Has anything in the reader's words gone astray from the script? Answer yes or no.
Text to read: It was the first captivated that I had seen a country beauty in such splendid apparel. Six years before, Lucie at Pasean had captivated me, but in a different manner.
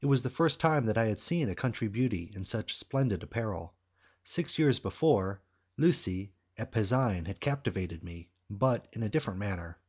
yes